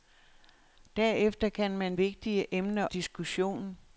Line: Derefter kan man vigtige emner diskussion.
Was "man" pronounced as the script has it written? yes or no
yes